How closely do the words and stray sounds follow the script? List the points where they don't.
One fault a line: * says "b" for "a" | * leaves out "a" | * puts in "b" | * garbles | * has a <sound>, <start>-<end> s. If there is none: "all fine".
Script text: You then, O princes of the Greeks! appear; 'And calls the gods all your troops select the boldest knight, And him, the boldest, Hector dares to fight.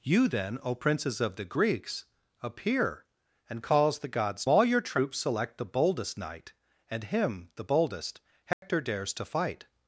* has a dropout, 8.5-8.6 s